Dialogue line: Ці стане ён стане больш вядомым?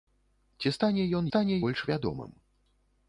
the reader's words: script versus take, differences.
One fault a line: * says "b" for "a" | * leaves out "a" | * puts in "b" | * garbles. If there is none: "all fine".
all fine